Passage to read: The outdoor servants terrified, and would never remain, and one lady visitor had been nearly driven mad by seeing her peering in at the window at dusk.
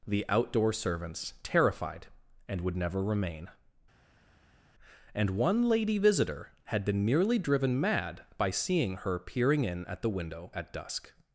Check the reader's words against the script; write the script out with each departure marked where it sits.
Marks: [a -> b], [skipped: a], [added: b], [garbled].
The outdoor servants terrified, and would never remain, and one lady visitor had been nearly driven mad by seeing her peering in at the window at dusk.